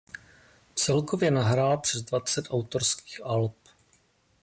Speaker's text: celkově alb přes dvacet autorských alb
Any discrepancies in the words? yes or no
yes